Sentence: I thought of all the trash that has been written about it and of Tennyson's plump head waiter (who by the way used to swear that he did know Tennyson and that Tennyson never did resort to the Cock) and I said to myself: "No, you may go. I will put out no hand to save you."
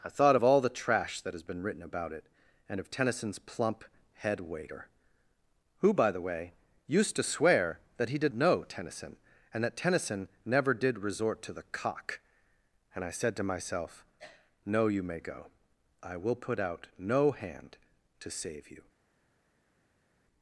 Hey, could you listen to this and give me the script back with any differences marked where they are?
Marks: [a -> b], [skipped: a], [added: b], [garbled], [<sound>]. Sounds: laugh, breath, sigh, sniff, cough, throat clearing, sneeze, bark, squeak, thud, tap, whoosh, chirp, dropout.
I thought of all the trash that has been written about it and of Tennyson's plump head waiter (who by the way used to swear that he did know Tennyson and that Tennyson never did resort to the Cock) and I said to myself: "No, you may go. I will put out no hand to save you."